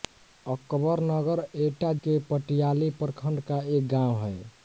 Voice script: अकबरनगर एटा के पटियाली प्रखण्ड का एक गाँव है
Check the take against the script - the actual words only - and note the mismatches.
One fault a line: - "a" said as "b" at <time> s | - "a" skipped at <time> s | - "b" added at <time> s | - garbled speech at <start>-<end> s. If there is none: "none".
none